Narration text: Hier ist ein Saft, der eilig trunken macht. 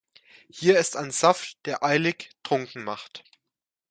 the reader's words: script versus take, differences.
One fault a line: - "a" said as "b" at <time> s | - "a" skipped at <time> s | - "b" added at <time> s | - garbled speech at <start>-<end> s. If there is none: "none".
none